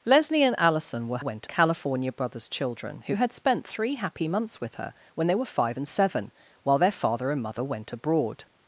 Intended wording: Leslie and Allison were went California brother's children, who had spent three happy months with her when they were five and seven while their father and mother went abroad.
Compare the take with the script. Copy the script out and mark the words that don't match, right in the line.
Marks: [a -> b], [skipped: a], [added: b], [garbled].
Leslie and Allison were went California brother's children, who had spent three happy months with her when they were five and seven while their father and mother went abroad.